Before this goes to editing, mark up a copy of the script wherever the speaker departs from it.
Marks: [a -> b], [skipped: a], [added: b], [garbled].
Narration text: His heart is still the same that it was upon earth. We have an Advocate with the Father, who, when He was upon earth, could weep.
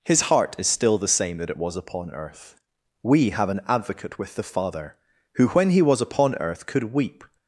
His heart is still the same that it was upon earth. We have an Advocate with the Father, who, when He was upon earth, could weep.